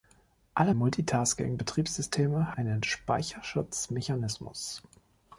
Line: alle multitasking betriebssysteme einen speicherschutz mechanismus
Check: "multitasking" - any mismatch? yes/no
no